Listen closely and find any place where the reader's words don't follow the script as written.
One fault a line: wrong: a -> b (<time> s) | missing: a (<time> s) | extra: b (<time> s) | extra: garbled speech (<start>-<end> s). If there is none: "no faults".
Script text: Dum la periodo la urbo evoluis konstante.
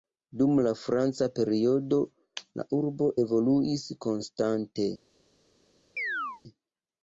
extra: franca (0.8 s)